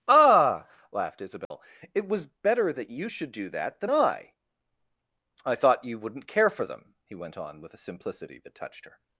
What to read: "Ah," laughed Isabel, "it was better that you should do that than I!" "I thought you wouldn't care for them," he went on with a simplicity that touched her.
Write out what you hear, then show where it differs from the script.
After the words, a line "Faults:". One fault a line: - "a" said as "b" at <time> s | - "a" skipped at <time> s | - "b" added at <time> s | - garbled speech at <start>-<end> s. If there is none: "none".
"Ah," laughed Isabel, "it was better that you should do that than I!" "I thought you wouldn't care for them," he went on with a simplicity that touched her.
Faults:
none